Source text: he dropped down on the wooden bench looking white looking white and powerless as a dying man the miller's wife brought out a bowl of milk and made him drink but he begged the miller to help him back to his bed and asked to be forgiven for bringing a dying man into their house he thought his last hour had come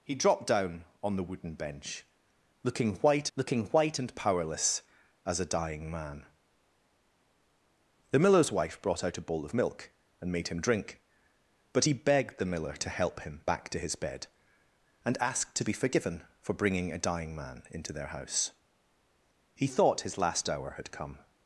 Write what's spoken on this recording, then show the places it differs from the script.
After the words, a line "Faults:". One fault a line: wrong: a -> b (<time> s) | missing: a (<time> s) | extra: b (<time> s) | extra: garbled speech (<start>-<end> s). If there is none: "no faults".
he dropped down on the wooden bench looking white looking white and powerless as a dying man the miller's wife brought out a bowl of milk and made him drink but he begged the miller to help him back to his bed and asked to be forgiven for bringing a dying man into their house he thought his last hour had come
Faults:
no faults